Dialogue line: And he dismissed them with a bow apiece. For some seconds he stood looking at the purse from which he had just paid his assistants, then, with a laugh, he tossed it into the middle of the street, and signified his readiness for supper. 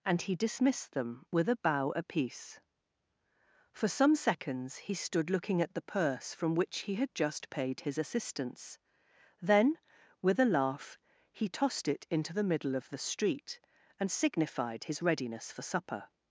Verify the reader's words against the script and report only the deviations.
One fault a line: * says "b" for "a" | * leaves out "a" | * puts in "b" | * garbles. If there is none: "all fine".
all fine